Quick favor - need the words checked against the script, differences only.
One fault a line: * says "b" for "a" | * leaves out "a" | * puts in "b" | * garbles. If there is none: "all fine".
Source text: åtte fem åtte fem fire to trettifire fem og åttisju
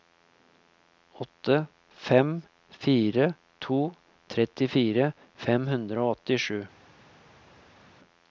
* leaves out "åtte fem"
* puts in "hundre"